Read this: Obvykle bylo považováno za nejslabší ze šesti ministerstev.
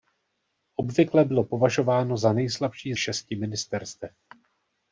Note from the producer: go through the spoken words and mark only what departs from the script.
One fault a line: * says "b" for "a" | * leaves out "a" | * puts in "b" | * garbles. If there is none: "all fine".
* leaves out "ze"